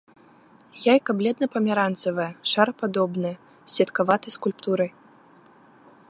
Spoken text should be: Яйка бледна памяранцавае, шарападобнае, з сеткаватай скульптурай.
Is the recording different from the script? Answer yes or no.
no